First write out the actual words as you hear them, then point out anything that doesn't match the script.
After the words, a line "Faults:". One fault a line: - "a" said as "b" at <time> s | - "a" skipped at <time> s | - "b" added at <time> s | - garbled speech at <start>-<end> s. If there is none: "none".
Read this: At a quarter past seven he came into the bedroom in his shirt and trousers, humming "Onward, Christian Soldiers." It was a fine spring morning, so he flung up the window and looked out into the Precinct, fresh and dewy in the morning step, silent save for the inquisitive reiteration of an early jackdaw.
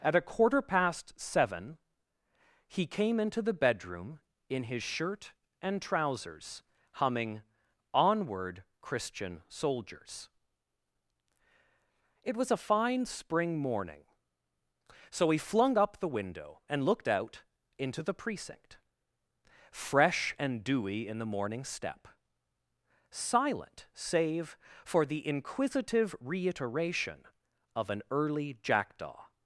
At a quarter past seven he came into the bedroom in his shirt and trousers, humming "Onward, Christian Soldiers." It was a fine spring morning, so he flung up the window and looked out into the Precinct, fresh and dewy in the morning step, silent save for the inquisitive reiteration of an early jackdaw.
Faults:
none